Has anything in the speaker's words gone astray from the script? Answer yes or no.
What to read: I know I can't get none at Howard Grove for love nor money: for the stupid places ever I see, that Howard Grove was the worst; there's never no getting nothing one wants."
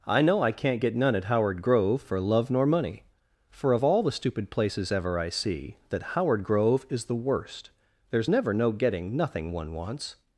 yes